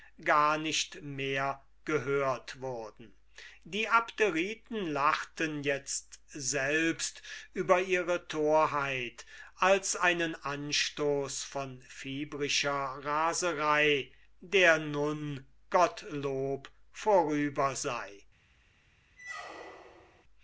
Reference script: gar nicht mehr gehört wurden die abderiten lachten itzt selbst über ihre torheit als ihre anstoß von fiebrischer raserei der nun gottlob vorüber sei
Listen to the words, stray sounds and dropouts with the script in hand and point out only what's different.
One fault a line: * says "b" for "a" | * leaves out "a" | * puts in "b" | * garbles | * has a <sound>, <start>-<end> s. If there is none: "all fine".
* says "einen" for "ihre"
* has a squeak, 19.2-20.2 s